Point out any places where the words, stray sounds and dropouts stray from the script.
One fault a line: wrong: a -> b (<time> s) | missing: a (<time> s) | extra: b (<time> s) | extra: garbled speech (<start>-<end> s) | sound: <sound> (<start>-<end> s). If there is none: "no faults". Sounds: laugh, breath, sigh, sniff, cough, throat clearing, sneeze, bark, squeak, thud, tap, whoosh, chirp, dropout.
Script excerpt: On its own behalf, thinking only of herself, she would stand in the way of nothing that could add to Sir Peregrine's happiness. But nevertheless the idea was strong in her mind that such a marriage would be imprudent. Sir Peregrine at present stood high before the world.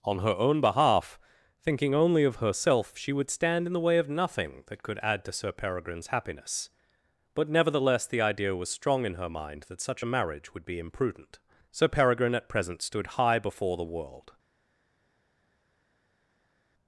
wrong: its -> her (0.2 s)